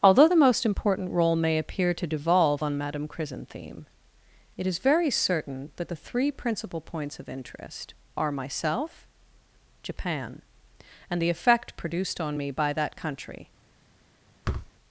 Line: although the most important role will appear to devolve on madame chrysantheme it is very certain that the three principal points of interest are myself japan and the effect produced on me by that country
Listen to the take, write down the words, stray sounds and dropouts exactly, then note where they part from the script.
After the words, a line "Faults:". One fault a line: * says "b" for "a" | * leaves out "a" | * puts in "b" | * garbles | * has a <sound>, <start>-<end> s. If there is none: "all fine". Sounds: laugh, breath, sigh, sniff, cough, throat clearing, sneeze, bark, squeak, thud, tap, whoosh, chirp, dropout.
although the most important role may appear to devolve on madame chrysantheme it is very certain that the three principal points of interest are myself japan and the effect produced on me by that country
Faults:
* says "may" for "will"
* has a thud, 14.4-14.7 s